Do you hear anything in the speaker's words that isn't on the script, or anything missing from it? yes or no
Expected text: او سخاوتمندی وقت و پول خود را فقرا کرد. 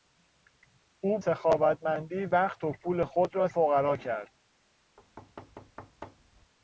no